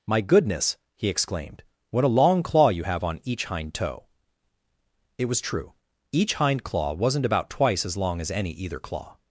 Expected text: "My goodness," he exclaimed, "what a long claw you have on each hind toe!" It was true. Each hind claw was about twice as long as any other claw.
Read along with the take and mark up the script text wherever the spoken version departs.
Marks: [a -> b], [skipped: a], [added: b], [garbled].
"My goodness," he exclaimed, "what a long claw you have on each hind toe!" It was true. Each hind claw [was -> wasn't] about twice as long as any [other -> either] claw.